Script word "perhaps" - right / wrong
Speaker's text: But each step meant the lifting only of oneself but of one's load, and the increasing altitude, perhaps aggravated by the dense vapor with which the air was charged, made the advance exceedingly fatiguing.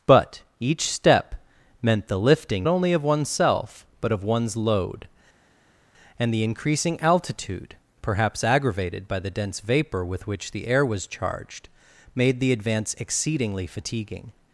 right